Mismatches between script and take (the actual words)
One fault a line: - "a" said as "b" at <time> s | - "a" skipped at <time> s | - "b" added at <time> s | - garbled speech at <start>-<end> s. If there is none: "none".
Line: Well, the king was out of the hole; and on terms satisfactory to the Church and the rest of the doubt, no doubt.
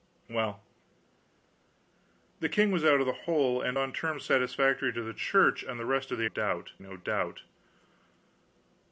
none